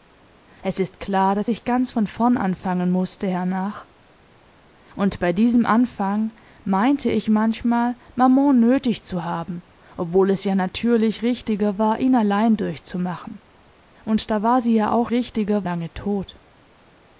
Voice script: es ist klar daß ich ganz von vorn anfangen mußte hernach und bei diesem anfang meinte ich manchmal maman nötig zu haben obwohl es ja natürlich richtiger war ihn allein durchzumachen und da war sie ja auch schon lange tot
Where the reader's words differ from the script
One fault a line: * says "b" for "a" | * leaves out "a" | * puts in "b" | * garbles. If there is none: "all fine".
* says "richtiger" for "schon"